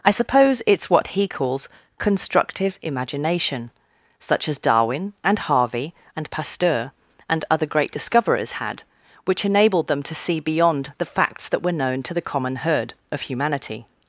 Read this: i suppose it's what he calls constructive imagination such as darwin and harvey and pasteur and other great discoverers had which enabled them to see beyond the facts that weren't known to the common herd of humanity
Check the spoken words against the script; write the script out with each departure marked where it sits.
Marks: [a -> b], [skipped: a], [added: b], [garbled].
i suppose it's what he calls constructive imagination such as darwin and harvey and pasteur and other great discoverers had which enabled them to see beyond the facts that [weren't -> were] known to the common herd of humanity